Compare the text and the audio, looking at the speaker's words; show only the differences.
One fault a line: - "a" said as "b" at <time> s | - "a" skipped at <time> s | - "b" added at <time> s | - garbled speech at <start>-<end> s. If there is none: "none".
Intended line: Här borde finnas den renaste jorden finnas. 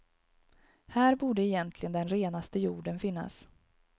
- "finnas" said as "egentligen" at 1.4 s